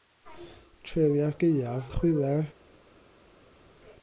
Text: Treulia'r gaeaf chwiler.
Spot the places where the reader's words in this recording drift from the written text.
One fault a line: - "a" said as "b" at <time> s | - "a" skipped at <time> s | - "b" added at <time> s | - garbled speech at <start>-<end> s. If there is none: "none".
none